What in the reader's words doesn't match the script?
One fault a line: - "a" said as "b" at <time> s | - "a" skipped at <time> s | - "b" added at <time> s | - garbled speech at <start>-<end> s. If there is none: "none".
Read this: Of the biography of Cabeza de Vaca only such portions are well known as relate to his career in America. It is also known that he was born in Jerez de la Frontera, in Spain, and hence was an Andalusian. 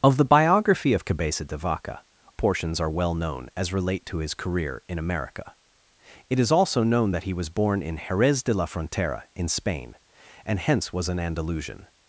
- "only such" skipped at 2.0 s